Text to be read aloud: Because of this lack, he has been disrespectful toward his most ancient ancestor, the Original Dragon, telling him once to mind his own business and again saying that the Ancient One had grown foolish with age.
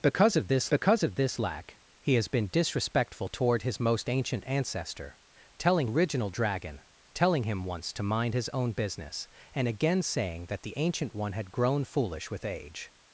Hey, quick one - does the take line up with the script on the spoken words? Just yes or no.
no